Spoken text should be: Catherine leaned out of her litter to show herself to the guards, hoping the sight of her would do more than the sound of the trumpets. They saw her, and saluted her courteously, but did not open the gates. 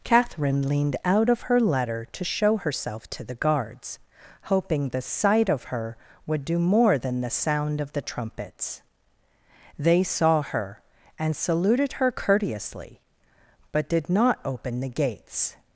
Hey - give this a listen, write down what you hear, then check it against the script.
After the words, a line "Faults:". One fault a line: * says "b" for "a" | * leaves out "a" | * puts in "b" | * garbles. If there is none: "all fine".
Catherine leaned out of her letter to show herself to the guards, hoping the sight of her would do more than the sound of the trumpets. They saw her, and saluted her courteously, but did not open the gates.
Faults:
* says "letter" for "litter"